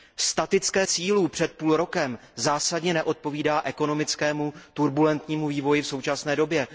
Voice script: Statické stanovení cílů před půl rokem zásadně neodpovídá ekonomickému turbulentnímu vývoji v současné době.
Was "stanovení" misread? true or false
true